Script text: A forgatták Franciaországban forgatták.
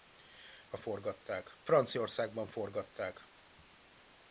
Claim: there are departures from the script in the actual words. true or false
false